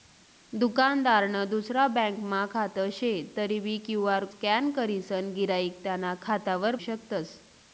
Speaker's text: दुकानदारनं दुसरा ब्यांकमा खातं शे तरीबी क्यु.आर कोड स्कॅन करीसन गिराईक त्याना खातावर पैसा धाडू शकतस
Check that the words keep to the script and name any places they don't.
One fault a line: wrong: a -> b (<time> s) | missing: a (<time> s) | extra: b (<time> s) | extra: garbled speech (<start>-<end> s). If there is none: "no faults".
missing: कोड (4.2 s)
missing: पैसा धाडू (6.8 s)